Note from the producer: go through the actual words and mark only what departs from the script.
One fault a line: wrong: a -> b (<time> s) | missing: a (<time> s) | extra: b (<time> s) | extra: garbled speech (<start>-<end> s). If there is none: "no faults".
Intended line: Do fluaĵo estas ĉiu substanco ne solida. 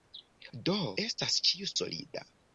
missing: fluaĵo (0.8 s)
missing: substanco ne (1.7 s)